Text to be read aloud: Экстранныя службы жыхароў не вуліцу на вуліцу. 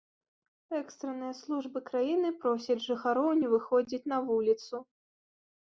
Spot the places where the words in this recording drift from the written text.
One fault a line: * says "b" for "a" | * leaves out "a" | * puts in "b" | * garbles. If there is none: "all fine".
* puts in "краіны просяць"
* says "выходзіць" for "вуліцу"